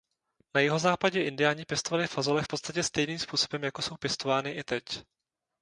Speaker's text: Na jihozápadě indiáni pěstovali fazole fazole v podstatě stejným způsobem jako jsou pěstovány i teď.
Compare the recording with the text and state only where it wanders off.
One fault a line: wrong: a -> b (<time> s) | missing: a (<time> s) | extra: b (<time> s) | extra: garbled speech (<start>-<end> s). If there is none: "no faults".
missing: fazole (2.4 s)